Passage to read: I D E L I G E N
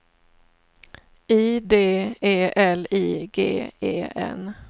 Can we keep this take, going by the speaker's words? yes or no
yes